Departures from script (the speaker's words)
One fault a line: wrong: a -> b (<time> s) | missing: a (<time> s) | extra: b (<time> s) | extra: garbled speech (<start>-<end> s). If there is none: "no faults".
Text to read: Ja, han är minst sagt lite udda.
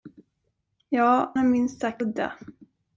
missing: han (1.3 s)
missing: lite (2.0 s)